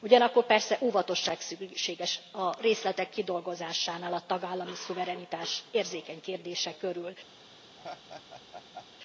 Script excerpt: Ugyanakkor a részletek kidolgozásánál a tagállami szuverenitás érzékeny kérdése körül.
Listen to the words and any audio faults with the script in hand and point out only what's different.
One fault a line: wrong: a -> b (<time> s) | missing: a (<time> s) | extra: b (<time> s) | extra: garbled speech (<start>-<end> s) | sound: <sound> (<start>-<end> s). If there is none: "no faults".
extra: persze óvatosság szükséges (0.5 s)
sound: laugh (7.8-8.9 s)